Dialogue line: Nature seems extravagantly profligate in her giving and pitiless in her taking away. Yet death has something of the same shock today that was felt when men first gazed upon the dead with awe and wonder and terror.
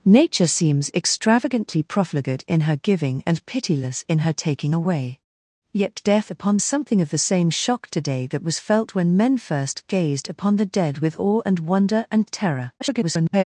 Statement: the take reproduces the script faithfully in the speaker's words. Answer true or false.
false